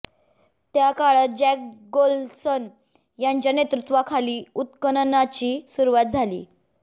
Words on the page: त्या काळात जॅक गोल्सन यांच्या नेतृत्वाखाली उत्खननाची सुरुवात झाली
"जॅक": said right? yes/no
yes